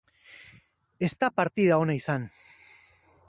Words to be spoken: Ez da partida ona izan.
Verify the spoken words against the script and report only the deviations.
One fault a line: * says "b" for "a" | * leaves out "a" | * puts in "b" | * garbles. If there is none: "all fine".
all fine